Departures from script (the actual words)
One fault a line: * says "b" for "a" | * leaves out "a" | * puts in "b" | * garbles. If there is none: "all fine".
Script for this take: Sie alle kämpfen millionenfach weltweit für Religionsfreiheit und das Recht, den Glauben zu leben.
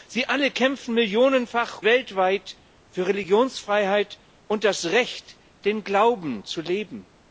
all fine